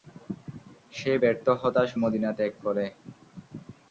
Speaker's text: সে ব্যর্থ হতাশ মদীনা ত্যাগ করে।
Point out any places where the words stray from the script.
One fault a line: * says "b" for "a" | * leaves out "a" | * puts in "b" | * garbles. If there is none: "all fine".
all fine